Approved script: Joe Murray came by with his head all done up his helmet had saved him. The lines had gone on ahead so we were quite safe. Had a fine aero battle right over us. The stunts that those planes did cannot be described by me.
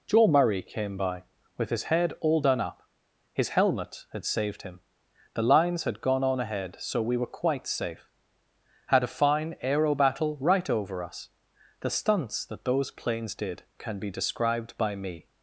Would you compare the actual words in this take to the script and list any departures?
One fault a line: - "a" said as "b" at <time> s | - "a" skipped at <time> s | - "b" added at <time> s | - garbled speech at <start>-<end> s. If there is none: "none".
- "cannot" said as "can" at 13.8 s